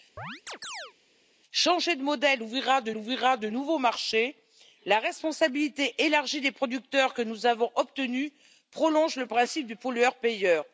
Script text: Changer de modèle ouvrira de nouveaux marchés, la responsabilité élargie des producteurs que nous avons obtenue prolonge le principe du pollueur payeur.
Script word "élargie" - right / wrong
right